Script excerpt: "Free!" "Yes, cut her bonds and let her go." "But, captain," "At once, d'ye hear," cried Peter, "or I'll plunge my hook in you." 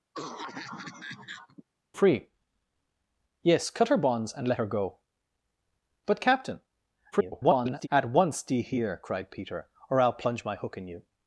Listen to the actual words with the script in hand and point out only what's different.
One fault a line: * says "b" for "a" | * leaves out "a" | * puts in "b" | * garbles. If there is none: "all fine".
* garbles